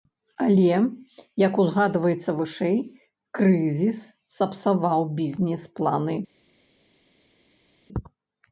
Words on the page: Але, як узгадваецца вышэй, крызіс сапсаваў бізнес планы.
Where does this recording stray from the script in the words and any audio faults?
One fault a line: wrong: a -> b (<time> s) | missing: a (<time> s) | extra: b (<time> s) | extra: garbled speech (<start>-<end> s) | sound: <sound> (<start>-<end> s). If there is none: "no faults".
no faults